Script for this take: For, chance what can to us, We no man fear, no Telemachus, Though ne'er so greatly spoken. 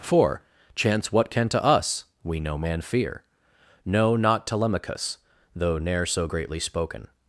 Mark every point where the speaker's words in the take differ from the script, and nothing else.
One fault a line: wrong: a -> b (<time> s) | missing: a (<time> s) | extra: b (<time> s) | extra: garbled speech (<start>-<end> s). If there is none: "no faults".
extra: not (4.2 s)